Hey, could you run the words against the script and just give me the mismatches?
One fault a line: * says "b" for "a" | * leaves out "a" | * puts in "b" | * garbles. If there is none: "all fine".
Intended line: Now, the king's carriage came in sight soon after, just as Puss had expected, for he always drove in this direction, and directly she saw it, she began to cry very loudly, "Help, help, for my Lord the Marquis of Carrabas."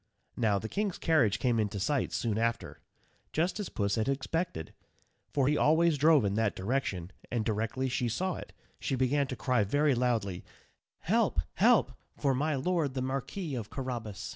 * says "that" for "this"